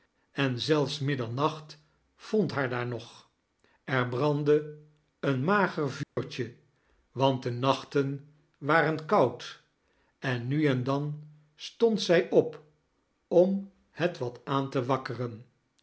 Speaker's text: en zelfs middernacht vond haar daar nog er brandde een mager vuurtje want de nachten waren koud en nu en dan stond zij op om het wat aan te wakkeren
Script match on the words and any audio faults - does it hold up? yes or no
no